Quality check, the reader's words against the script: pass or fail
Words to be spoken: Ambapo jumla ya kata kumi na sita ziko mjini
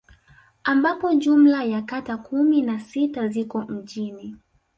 pass